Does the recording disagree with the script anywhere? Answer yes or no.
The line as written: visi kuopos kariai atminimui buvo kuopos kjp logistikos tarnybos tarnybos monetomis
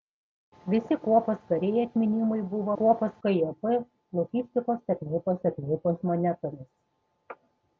no